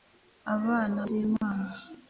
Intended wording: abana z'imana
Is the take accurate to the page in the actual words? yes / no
yes